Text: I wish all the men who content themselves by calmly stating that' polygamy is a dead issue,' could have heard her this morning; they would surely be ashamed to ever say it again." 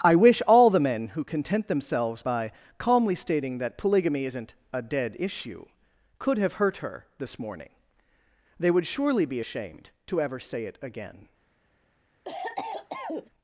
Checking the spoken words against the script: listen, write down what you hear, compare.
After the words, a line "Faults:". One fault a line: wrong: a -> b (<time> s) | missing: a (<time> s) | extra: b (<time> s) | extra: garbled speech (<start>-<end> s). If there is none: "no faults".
I wish all the men who content themselves by calmly stating that' polygamy isn't a dead issue,' could have hurt her this morning; they would surely be ashamed to ever say it again."
Faults:
wrong: is -> isn't (4.2 s)
wrong: heard -> hurt (6.5 s)